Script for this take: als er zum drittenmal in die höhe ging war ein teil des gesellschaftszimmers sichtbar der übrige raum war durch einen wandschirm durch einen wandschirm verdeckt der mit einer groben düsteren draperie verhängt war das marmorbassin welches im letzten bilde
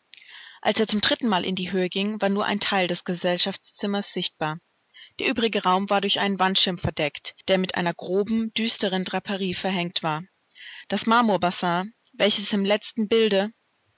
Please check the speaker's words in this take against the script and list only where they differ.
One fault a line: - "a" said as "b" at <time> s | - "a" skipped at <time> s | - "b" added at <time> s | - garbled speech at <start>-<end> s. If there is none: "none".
- "nur" added at 2.3 s
- "durch einen wandschirm" skipped at 6.8 s